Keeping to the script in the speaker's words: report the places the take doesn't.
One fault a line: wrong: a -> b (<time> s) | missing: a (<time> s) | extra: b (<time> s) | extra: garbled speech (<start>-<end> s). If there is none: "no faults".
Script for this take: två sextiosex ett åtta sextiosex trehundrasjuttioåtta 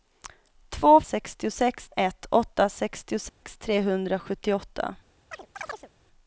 no faults